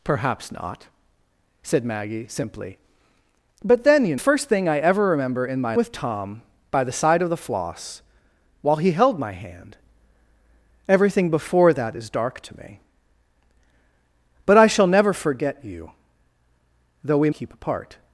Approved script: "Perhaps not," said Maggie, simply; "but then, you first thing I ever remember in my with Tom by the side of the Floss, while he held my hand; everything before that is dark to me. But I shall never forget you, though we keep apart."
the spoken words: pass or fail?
pass